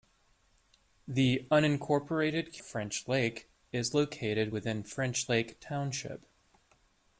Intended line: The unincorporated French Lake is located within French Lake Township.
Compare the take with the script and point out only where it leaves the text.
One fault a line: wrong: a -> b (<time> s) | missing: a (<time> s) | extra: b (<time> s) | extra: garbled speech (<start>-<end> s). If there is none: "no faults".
no faults